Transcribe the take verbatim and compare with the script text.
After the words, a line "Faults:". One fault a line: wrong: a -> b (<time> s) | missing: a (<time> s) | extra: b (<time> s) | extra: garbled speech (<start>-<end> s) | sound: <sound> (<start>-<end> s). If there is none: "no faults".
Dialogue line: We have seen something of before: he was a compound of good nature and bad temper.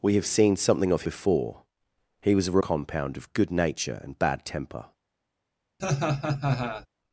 We have seen something of before: he was a compound of good nature and bad temper.
Faults:
sound: laugh (5.8-6.9 s)